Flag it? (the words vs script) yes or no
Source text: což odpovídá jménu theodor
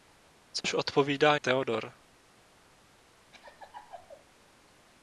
yes